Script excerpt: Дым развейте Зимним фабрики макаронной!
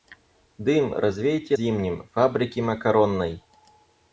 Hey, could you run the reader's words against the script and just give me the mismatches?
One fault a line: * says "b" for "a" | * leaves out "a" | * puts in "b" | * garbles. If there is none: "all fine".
all fine